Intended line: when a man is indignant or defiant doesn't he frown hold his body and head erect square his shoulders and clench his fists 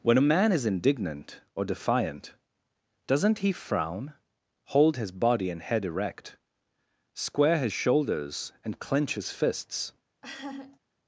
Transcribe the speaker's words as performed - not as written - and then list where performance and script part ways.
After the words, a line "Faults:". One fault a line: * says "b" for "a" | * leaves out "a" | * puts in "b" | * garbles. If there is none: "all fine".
when a man is indignant or defiant doesn't he frown hold his body and head erect square his shoulders and clench his fists
Faults:
all fine